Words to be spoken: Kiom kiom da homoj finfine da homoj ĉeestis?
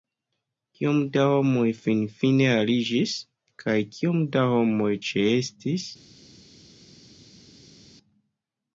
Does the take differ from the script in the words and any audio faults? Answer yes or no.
yes